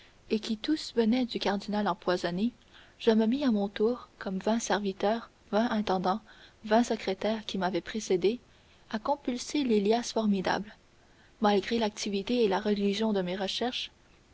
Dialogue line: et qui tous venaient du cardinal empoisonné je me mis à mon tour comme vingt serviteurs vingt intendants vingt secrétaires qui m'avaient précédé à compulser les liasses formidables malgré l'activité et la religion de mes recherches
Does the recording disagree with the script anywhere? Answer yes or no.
no